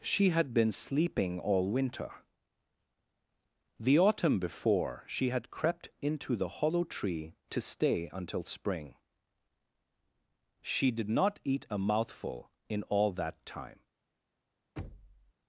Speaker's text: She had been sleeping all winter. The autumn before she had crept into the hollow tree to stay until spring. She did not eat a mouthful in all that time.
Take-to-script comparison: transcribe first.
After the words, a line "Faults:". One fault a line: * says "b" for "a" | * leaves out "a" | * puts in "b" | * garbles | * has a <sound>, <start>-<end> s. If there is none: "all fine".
She had been sleeping all winter. The autumn before she had crept into the hollow tree to stay until spring. She did not eat a mouthful in all that time.
Faults:
* has a thud, 14.8-15.3 s